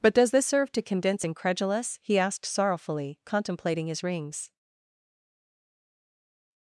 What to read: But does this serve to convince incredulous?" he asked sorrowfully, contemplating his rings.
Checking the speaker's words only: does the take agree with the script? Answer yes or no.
yes